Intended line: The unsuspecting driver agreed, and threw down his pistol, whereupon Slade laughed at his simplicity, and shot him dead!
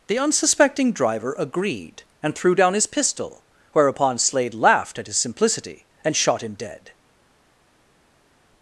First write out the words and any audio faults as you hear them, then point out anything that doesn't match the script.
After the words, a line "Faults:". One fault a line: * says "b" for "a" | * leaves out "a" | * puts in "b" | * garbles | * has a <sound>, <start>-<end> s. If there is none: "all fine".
The unsuspecting driver agreed, and threw down his pistol, whereupon Slade laughed at his simplicity, and shot him dead!
Faults:
all fine